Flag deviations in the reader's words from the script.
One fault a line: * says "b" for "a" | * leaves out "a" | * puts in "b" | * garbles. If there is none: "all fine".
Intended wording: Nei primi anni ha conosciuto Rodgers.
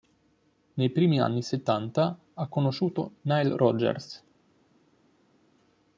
* puts in "settanta"
* puts in "Nile"